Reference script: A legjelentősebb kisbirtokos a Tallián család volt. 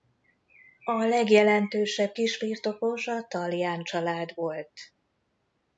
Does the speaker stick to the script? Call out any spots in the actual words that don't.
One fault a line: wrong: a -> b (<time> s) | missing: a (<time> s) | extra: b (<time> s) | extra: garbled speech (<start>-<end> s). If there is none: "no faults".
no faults